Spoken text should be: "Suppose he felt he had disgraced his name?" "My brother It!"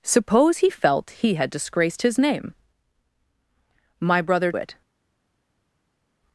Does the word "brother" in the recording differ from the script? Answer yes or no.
no